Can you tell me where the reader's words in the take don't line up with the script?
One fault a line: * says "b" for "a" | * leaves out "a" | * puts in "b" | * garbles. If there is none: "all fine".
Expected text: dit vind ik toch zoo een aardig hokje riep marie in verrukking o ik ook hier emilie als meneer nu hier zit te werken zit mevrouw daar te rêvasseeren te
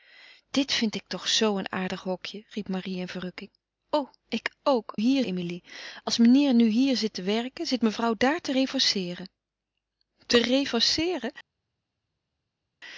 all fine